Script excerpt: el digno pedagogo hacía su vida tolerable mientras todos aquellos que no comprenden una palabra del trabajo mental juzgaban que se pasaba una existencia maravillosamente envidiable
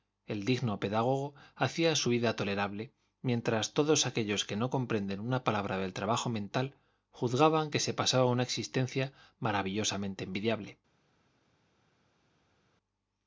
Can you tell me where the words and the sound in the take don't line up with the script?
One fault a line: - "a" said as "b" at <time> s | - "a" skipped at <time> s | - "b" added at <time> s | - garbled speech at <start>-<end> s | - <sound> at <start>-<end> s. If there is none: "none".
none